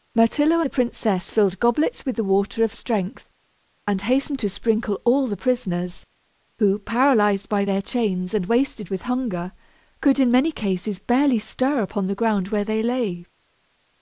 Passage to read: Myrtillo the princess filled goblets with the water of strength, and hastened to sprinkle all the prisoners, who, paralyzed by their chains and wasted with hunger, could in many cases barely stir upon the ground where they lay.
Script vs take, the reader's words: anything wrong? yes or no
no